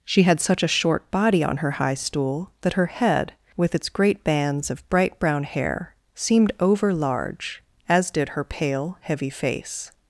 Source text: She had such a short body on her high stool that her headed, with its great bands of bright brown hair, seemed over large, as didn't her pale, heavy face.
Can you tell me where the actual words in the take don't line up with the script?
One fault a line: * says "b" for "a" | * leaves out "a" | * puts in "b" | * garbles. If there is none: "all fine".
* says "head" for "headed"
* says "did" for "didn't"